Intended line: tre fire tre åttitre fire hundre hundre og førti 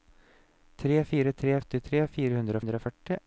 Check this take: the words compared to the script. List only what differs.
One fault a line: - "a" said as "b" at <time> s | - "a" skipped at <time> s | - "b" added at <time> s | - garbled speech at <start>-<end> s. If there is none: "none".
none